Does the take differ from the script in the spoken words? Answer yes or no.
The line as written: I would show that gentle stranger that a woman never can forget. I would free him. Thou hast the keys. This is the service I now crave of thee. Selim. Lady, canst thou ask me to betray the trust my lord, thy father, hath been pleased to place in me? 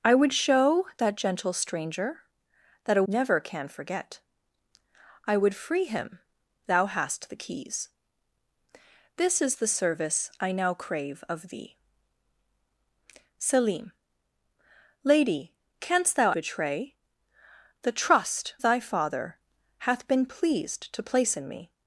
yes